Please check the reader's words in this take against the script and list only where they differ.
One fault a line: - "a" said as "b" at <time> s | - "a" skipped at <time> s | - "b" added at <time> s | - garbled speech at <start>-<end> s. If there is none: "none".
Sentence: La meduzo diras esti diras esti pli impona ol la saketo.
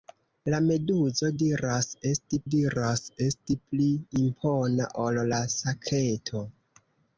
none